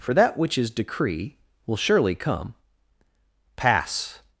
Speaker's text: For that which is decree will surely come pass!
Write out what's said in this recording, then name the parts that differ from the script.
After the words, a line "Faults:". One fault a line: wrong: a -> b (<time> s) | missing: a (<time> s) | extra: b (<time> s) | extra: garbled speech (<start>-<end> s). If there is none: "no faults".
For that which is decree will surely come pass!
Faults:
no faults